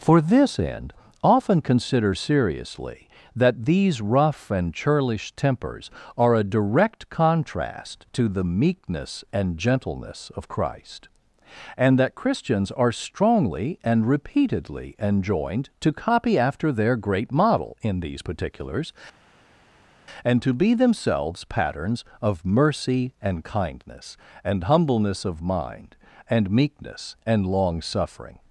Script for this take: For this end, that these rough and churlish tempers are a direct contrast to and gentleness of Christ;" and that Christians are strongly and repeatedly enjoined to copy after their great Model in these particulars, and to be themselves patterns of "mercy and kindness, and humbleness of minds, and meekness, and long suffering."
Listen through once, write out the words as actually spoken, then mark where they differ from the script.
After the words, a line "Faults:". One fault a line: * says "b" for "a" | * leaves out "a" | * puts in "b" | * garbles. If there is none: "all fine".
For this end, often consider seriously, that these rough and churlish tempers are a direct contrast to the "meekness and gentleness of Christ;" and that Christians are strongly and repeatedly enjoined to copy after their great Model in these particulars, and to be themselves patterns of "mercy and kindness, and humbleness of mind, and meekness, and long suffering."
Faults:
* puts in "often consider seriously"
* puts in "the meekness"
* says "mind" for "minds"